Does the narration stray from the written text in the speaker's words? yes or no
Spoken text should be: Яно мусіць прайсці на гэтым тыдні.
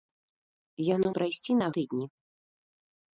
yes